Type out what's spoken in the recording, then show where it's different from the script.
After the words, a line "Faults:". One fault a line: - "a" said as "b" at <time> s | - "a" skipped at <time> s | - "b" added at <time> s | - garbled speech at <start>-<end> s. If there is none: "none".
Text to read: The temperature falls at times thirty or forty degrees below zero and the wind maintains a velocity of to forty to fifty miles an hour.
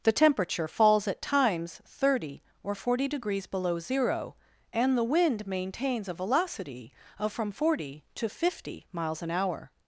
The temperature falls at times thirty or forty degrees below zero and the wind maintains a velocity of from forty to fifty miles an hour.
Faults:
- "to" said as "from" at 7.3 s